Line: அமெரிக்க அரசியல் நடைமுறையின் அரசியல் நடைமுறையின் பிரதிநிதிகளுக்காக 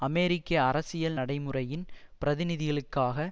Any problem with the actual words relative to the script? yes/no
yes